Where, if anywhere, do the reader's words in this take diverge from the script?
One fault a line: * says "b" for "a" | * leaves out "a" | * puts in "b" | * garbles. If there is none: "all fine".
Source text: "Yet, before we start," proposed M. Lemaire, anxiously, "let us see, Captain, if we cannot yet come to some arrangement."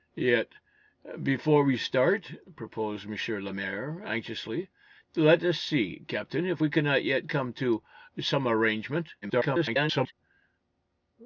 * garbles